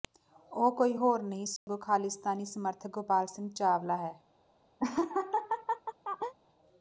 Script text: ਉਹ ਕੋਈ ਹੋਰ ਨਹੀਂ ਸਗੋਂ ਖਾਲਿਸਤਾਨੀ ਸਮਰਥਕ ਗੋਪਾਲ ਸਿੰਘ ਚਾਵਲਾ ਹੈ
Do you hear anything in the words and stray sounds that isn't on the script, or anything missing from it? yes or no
yes